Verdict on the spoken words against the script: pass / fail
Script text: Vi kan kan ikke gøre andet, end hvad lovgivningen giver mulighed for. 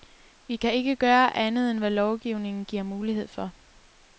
fail